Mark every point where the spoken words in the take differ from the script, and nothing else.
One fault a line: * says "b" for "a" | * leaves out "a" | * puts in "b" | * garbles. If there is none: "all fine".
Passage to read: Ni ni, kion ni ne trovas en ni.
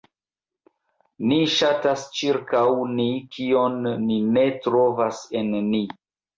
* puts in "ŝatas ĉirkaŭ"